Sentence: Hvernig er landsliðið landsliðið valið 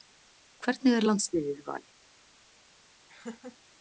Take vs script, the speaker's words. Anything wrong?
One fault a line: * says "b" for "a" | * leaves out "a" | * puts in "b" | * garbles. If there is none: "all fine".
* leaves out "landsliðið"